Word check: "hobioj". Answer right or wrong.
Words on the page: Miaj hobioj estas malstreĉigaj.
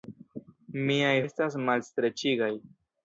wrong